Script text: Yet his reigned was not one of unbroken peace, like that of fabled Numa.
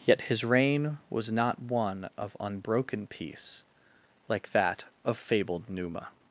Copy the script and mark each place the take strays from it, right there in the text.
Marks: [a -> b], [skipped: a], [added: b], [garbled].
Yet his [reigned -> reign] was not one of unbroken peace, like that of fabled Numa.